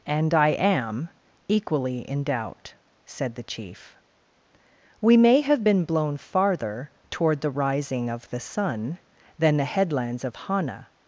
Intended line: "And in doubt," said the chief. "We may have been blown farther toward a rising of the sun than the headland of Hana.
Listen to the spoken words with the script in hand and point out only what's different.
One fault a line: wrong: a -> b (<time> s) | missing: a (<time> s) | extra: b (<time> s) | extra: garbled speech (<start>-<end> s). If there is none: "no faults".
extra: I am equally (0.3 s)
wrong: a -> the (7.4 s)
wrong: headland -> headlands (9.6 s)